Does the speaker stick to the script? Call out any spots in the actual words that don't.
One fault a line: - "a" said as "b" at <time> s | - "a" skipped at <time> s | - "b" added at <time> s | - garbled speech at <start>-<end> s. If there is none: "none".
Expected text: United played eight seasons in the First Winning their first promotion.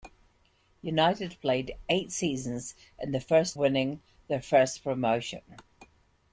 none